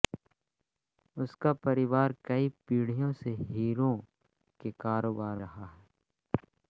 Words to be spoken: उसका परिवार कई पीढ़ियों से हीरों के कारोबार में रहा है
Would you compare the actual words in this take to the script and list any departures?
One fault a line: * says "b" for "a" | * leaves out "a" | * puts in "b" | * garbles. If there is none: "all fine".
* leaves out "में"